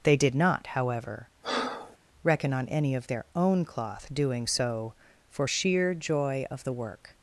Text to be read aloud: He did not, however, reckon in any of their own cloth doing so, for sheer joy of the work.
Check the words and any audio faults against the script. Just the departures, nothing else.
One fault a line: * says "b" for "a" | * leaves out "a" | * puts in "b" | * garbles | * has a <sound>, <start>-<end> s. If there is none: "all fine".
* says "They" for "He"
* has a breath, 1.4-2.0 s
* says "on" for "in"